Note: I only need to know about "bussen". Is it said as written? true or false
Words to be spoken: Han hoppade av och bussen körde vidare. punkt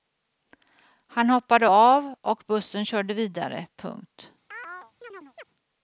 true